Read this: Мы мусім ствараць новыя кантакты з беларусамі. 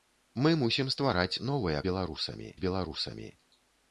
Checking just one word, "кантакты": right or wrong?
wrong